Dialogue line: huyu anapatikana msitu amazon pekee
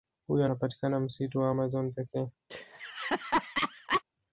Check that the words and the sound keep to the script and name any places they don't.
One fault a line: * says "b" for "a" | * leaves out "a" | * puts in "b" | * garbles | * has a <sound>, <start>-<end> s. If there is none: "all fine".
* puts in "wa"
* has a laugh, 2.5-4.0 s